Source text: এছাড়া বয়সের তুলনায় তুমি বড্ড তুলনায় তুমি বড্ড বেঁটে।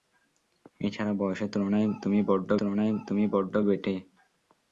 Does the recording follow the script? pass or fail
pass